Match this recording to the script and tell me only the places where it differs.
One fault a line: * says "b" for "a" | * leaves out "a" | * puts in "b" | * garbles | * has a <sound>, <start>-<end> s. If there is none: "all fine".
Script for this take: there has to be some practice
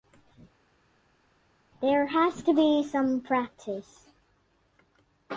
all fine